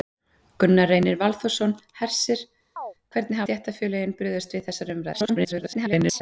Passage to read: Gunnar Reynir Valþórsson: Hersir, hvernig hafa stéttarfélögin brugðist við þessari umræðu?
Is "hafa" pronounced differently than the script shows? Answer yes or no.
yes